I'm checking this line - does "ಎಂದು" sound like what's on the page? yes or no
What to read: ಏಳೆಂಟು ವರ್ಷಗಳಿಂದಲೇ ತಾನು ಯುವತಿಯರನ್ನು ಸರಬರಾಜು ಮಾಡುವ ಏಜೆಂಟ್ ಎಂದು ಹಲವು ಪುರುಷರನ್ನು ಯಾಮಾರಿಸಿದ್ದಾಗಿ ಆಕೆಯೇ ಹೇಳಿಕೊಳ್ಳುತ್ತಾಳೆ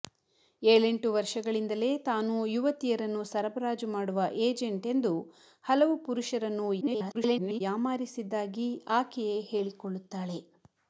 yes